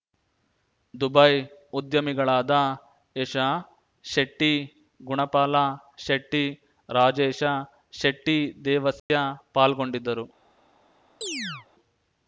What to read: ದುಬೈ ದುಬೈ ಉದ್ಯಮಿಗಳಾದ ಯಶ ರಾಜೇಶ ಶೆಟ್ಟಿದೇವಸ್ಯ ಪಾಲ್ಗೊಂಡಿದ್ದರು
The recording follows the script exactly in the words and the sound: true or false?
false